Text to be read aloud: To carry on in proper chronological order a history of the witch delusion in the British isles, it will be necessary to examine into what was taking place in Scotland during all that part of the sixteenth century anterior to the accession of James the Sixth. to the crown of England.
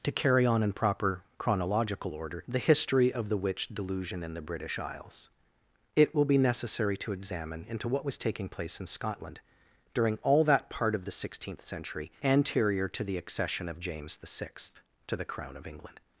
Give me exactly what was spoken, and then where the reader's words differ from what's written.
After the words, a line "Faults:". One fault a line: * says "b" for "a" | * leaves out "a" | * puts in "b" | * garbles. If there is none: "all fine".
To carry on in proper chronological order the history of the witch delusion in the British isles, it will be necessary to examine into what was taking place in Scotland during all that part of the sixteenth century anterior to the accession of James the Sixth. to the crown of England.
Faults:
* says "the" for "a"